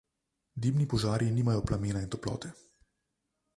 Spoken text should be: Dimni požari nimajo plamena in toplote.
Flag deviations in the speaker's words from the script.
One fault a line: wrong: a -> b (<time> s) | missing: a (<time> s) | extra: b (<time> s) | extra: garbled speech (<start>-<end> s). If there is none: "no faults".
no faults